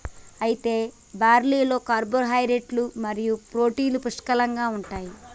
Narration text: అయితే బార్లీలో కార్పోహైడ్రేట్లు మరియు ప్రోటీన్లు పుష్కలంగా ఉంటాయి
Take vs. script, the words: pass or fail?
pass